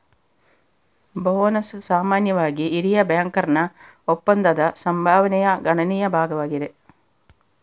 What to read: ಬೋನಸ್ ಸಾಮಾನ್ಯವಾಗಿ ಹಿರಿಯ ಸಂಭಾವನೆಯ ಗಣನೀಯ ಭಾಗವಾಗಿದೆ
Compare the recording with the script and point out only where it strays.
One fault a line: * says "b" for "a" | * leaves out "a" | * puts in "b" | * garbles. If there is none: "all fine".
* puts in "ಬ್ಯಾಂಕರ್ನ ಒಪ್ಪಂದದ"